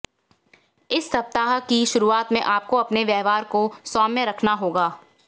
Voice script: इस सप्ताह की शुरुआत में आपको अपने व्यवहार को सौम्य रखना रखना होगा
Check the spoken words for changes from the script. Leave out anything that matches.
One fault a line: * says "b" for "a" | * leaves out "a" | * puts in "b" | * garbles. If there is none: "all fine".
* leaves out "रखना"